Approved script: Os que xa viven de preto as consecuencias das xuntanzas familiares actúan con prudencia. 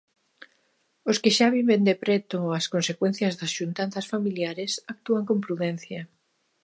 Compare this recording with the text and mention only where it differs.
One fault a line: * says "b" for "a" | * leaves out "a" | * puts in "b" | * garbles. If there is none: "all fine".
all fine